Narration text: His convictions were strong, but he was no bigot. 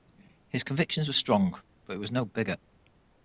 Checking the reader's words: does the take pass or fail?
pass